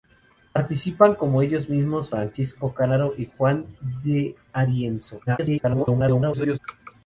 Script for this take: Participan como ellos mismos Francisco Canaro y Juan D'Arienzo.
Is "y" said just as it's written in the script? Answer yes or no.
yes